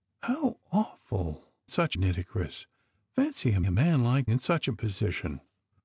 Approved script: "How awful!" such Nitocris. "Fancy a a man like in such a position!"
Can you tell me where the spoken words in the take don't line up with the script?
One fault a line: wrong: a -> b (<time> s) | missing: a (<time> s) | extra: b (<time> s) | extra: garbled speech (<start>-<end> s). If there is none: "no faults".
no faults